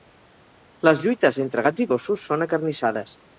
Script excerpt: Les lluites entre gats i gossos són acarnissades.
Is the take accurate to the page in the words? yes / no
yes